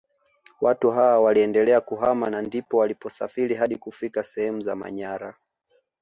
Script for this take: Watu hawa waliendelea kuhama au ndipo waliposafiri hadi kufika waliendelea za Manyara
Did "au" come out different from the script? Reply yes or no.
yes